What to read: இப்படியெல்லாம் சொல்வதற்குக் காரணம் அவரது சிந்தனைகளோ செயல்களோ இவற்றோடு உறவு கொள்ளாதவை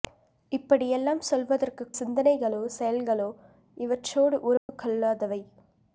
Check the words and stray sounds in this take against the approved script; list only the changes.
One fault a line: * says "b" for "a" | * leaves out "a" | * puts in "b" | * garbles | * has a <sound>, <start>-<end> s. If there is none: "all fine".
* leaves out "காரணம் அவரது"
* has a dropout, 4.6-4.7 s